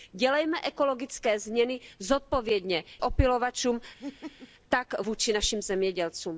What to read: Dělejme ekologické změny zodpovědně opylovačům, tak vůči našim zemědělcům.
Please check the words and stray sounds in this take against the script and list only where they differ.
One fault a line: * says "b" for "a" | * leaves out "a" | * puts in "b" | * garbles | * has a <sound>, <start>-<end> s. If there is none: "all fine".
* has a laugh, 4.0-4.5 s